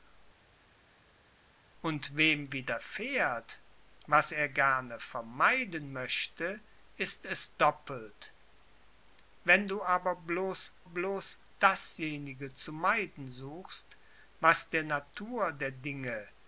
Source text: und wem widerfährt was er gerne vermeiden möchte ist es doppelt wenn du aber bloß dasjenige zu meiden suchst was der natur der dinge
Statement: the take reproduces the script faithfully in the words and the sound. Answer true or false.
false